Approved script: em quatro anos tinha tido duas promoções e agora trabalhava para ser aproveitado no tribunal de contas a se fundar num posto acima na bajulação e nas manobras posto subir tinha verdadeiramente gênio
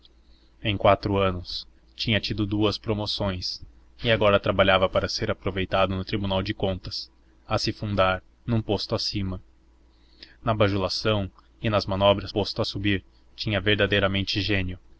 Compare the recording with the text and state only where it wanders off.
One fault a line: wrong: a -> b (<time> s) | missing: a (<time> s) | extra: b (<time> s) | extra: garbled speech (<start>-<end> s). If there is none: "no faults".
no faults